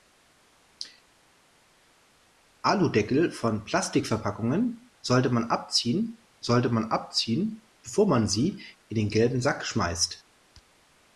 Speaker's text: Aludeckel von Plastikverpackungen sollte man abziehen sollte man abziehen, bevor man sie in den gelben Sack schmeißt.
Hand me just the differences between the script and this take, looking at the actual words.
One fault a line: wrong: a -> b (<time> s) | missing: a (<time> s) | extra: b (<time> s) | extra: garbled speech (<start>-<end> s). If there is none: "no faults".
no faults